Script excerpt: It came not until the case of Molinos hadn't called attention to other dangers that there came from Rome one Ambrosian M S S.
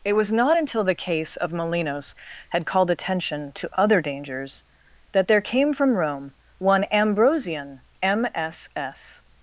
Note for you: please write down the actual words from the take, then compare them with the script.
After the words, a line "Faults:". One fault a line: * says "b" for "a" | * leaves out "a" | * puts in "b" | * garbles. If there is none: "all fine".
It was not until the case of Molinos had called attention to other dangers that there came from Rome one Ambrosian M S S.
Faults:
* says "was" for "came"
* says "had" for "hadn't"